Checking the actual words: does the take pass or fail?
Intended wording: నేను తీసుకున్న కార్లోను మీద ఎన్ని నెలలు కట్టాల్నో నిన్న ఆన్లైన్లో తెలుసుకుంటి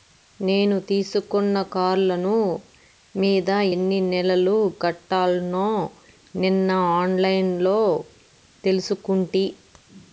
pass